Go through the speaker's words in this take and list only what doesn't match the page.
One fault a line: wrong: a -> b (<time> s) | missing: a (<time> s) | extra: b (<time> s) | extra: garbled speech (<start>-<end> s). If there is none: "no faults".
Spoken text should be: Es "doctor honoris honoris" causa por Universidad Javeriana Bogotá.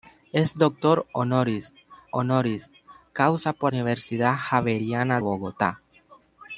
no faults